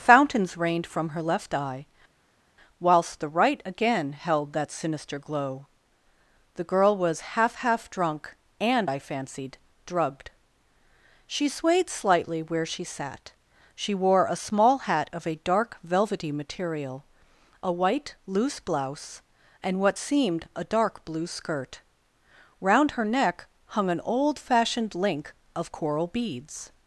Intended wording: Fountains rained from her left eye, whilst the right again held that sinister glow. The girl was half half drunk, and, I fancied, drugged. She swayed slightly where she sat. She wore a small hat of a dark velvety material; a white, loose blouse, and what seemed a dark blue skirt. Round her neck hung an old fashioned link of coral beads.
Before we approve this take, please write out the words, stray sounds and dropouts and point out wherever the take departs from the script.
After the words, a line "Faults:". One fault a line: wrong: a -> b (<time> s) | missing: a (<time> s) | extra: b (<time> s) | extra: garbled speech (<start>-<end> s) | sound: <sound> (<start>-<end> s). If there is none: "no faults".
Fountains rained from her left eye, whilst the right again held that sinister glow. The girl was half half drunk, and, I fancied, drugged. She swayed slightly where she sat. She wore a small hat of a dark velvety material; a white, loose blouse, and what seemed a dark blue skirt. Round her neck hung an old fashioned link of coral beads.
Faults:
no faults